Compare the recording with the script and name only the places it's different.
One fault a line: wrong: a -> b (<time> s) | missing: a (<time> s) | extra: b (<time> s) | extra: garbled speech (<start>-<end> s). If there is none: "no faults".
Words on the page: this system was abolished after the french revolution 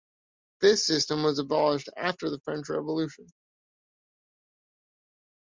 no faults